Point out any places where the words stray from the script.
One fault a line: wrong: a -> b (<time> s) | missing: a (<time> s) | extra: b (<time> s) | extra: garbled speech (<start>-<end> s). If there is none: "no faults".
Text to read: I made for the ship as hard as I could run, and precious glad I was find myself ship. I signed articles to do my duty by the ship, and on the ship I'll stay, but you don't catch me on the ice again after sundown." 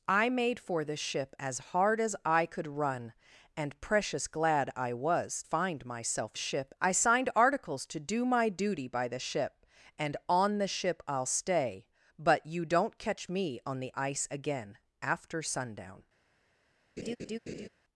no faults